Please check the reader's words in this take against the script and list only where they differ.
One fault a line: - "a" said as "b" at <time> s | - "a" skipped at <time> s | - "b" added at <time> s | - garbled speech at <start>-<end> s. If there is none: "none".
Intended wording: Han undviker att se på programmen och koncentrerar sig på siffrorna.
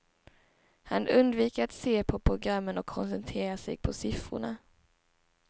none